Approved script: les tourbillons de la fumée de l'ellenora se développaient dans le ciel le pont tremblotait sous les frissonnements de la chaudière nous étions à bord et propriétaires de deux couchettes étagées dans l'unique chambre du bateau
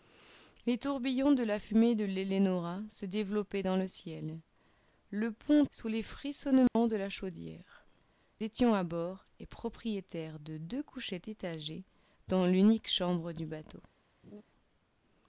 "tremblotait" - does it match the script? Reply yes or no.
no